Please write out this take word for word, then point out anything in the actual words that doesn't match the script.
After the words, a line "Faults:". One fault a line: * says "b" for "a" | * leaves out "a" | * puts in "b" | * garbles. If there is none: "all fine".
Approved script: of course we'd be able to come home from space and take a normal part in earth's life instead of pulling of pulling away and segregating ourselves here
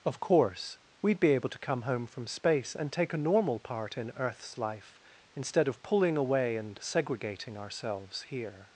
of course we'd be able to come home from space and take a normal part in earth's life instead of pulling away and segregating ourselves here
Faults:
* leaves out "of pulling"